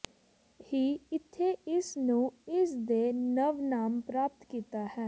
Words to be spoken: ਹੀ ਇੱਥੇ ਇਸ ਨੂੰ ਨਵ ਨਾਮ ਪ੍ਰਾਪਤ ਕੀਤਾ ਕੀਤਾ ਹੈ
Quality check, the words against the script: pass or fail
fail